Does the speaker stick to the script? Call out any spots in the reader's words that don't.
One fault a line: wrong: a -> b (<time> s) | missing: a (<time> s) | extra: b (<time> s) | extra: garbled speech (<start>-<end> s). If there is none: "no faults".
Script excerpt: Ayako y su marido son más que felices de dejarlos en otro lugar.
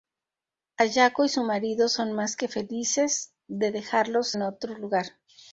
no faults